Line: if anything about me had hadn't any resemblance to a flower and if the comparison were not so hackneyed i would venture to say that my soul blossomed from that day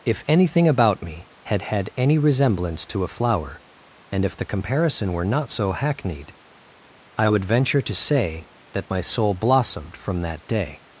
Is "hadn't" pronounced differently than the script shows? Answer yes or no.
yes